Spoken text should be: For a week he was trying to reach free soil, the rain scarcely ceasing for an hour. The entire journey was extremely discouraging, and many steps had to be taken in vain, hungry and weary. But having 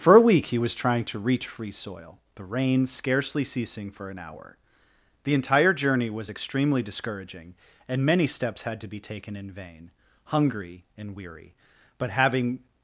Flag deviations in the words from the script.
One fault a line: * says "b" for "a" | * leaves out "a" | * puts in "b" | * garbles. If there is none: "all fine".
all fine